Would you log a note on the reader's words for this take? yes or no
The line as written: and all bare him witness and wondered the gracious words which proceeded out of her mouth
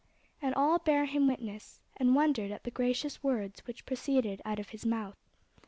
yes